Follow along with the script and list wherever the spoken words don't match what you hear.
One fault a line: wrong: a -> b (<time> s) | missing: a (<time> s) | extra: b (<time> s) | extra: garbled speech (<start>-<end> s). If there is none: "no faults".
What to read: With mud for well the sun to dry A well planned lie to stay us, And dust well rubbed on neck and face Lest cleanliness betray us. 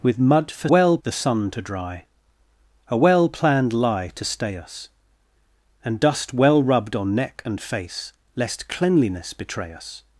no faults